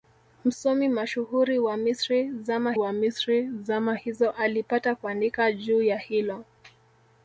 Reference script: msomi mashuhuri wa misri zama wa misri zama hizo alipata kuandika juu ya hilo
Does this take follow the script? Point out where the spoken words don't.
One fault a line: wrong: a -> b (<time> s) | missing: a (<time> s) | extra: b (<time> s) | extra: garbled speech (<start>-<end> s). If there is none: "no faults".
no faults